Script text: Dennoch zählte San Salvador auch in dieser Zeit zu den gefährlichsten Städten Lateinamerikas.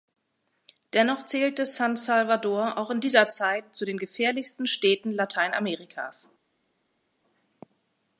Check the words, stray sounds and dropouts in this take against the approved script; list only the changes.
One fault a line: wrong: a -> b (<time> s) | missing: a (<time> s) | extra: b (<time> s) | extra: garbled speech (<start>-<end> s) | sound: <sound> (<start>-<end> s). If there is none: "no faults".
no faults